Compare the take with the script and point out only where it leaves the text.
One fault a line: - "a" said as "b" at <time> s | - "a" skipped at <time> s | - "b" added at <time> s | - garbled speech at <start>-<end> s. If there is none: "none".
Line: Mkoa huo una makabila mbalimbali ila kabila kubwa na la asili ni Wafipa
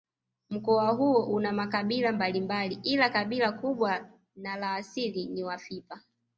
none